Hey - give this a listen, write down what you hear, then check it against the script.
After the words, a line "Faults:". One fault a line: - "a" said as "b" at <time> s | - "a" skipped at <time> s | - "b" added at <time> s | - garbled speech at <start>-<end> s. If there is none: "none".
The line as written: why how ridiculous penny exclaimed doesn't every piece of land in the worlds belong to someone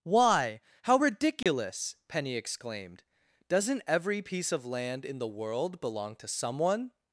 why how ridiculous penny exclaimed doesn't every piece of land in the world belong to someone
Faults:
- "worlds" said as "world" at 5.3 s